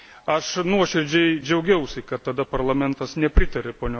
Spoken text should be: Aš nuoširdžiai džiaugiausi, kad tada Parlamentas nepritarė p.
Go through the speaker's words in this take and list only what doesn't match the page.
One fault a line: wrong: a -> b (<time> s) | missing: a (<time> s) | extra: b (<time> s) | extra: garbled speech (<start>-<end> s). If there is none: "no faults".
no faults